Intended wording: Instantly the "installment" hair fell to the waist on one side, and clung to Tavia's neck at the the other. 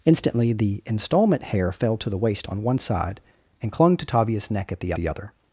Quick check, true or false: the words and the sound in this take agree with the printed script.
true